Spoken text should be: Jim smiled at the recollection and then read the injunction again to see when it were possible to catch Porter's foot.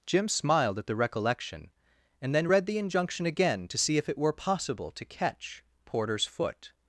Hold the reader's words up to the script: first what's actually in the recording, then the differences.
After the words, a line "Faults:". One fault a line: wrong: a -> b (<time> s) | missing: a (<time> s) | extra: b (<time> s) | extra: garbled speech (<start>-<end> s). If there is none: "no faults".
Jim smiled at the recollection and then read the injunction again to see if it were possible to catch Porter's foot.
Faults:
wrong: when -> if (4.0 s)